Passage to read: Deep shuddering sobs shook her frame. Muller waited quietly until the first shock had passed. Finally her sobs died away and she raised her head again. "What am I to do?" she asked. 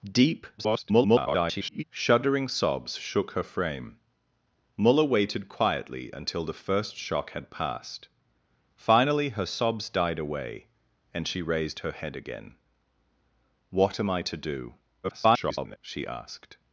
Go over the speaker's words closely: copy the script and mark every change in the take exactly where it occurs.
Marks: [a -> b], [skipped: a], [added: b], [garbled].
Deep [garbled] shuddering sobs shook her frame. Muller waited quietly until the first shock had passed. Finally her sobs died away and she raised her head again. "What am I to do?" [garbled] she asked.